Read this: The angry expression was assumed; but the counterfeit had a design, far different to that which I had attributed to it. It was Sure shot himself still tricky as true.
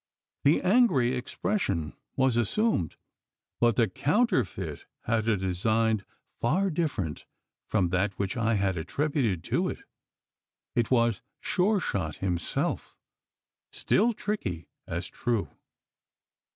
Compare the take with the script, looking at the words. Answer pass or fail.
fail